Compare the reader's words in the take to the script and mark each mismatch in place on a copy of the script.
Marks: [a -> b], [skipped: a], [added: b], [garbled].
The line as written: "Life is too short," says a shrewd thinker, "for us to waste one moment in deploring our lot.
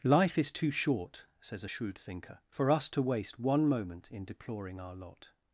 "Life is too short," says a shrewd thinker, "for us to waste one moment in deploring our lot.